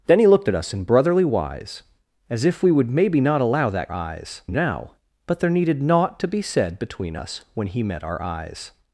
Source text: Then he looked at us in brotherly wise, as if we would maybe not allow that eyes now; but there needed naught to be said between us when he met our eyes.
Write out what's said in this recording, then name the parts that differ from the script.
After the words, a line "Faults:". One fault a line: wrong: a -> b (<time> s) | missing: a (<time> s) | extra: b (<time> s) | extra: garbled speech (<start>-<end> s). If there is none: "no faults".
Then he looked at us in brotherly wise, as if we would maybe not allow that eyes now; but there needed naught to be said between us when he met our eyes.
Faults:
no faults